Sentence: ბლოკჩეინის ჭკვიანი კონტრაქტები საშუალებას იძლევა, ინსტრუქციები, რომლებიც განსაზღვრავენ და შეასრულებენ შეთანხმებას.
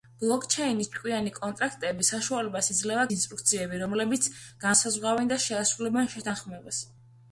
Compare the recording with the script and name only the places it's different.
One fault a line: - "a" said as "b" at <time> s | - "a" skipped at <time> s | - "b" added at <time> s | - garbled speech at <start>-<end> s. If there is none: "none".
none